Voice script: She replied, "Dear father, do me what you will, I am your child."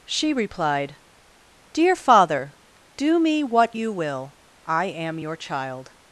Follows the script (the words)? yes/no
yes